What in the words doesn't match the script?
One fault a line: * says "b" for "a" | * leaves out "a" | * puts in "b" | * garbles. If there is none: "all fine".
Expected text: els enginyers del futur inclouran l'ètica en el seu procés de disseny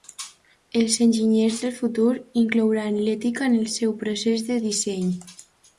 all fine